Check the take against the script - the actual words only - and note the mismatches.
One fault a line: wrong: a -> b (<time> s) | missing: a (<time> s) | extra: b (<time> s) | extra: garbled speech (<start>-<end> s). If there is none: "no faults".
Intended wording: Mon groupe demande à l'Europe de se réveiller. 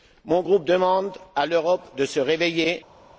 no faults